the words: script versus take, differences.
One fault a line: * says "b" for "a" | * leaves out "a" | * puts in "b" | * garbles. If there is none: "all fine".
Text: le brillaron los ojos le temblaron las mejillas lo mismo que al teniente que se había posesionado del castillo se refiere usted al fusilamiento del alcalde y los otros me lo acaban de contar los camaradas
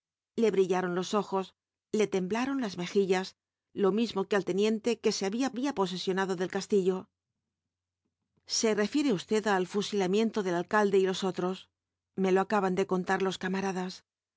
* puts in "había"